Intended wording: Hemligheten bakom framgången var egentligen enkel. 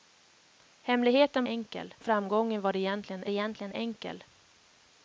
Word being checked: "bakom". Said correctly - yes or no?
no